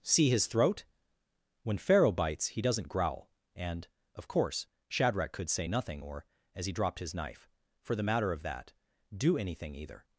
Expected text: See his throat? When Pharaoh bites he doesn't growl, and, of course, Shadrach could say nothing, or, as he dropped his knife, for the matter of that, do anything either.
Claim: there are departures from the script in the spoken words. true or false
false